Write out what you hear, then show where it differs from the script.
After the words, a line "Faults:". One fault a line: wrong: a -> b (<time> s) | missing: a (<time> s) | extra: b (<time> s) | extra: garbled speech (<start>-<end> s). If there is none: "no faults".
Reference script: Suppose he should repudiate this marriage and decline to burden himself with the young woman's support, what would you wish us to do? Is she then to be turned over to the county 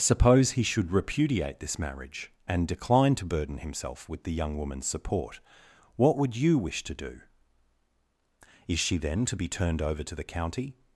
Suppose he should repudiate this marriage and decline to burden himself with the young woman's support, what would you wish to do? Is she then to be turned over to the county
Faults:
missing: us (6.8 s)